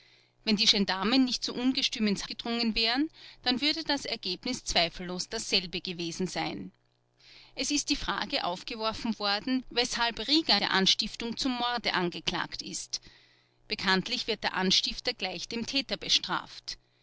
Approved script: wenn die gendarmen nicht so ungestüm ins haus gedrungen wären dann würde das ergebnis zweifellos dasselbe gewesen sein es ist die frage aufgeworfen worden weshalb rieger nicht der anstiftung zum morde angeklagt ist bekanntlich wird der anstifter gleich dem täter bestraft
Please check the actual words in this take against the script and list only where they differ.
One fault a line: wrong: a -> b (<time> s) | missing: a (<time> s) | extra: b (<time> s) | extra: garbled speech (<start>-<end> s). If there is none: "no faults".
missing: haus (2.2 s)
missing: nicht (10.6 s)